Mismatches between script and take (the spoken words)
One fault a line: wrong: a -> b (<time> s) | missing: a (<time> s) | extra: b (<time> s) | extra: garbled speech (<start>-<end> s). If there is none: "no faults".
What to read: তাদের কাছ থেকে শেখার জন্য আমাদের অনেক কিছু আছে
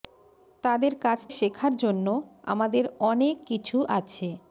missing: থেকে (1.2 s)